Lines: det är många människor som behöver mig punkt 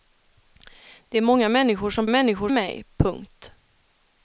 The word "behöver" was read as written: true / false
false